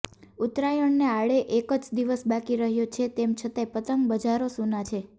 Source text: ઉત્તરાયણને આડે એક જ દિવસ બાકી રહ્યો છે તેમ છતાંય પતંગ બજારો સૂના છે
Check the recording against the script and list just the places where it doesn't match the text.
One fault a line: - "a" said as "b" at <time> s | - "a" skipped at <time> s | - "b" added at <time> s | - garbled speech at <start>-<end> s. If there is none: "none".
none